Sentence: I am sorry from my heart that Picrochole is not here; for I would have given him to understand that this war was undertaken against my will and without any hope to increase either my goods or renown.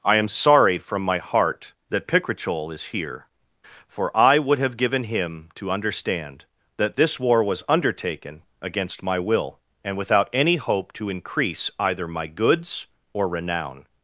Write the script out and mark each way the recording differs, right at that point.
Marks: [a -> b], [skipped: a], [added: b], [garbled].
I am sorry from my heart that Picrochole is [skipped: not] here; for I would have given him to understand that this war was undertaken against my will and without any hope to increase either my goods or renown.